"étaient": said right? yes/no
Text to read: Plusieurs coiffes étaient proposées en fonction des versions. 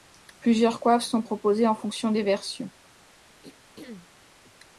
no